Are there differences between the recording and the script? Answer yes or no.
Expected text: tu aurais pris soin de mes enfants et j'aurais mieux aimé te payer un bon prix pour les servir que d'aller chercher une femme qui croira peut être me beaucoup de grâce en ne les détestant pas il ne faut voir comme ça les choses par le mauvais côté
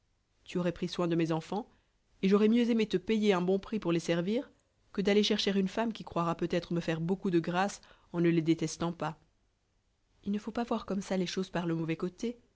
yes